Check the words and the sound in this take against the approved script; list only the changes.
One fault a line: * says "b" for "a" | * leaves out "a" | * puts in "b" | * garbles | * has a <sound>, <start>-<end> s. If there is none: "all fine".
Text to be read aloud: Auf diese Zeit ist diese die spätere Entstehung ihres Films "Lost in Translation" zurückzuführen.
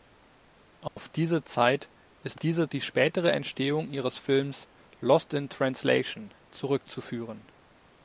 * has a dropout, 0.9-1.0 s